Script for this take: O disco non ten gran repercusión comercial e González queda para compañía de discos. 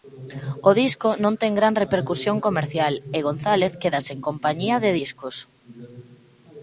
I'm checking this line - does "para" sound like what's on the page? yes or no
no